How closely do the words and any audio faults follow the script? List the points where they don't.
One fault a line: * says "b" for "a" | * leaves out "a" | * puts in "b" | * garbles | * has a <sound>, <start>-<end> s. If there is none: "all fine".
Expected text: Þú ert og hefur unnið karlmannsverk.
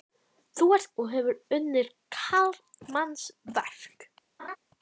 * has a laugh, 4.4-4.6 s